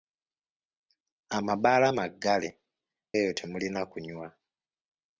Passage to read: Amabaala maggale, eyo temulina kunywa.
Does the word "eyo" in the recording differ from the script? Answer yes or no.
no